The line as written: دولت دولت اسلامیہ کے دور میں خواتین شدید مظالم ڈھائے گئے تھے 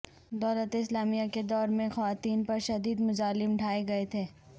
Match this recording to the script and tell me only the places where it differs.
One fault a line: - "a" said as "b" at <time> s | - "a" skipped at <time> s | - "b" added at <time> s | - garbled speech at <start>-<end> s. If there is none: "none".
- "دولت" skipped at 0.8 s
- "پر" added at 2.4 s